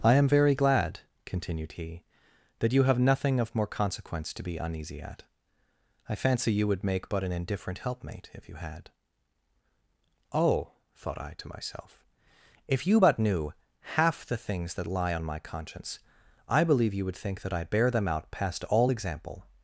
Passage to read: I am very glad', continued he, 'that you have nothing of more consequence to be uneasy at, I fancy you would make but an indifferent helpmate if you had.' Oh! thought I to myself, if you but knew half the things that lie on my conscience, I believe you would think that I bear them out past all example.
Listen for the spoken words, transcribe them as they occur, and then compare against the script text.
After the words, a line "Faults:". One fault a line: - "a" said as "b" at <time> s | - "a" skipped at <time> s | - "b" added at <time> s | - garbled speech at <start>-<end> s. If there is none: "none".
I am very glad', continued he, 'that you have nothing of more consequence to be uneasy at, I fancy you would make but an indifferent helpmate if you had.' Oh! thought I to myself, if you but knew half the things that lie on my conscience, I believe you would think that I bear them out past all example.
Faults:
none